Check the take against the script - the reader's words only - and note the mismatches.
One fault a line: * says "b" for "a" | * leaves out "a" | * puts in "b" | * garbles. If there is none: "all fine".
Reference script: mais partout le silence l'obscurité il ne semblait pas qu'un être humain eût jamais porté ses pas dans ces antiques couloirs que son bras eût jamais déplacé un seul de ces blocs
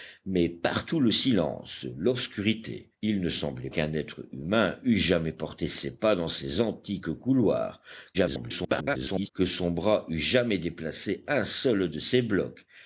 * leaves out "pas"
* garbles